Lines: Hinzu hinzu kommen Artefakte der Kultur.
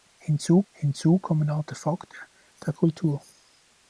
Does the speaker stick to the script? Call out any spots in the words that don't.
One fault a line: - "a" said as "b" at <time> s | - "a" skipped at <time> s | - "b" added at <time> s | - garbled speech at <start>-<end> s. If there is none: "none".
none